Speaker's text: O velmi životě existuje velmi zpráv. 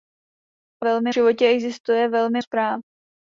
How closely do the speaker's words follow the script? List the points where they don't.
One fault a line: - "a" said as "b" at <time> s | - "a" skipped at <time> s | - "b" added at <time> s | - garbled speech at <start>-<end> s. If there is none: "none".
none